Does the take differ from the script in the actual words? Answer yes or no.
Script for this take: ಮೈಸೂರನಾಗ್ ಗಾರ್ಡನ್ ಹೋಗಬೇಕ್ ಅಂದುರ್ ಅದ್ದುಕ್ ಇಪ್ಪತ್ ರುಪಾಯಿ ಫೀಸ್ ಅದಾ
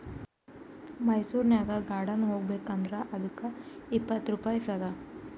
yes